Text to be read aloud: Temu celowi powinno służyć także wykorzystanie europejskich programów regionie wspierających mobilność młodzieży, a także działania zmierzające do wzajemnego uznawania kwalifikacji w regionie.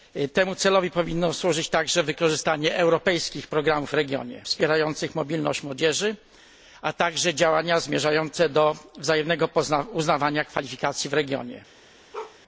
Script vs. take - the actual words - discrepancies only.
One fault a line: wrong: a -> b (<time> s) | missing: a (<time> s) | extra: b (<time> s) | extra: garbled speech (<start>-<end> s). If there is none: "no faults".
no faults